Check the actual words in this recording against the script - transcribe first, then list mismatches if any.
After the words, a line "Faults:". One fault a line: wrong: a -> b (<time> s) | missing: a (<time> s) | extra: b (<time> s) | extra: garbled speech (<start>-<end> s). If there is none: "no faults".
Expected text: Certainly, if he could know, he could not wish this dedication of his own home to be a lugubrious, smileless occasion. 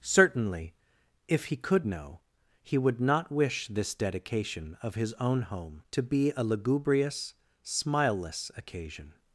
Certainly, if he could know, he would not wish this dedication of his own home to be a lugubrious, smileless occasion.
Faults:
wrong: could -> would (2.8 s)